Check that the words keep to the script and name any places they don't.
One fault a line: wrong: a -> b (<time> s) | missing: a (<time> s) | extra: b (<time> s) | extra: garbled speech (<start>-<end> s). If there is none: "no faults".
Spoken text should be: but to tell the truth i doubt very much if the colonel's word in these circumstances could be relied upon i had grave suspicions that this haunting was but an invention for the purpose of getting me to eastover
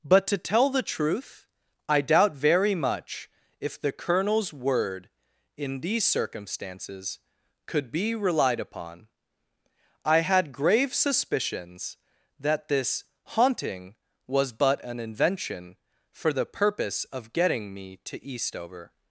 no faults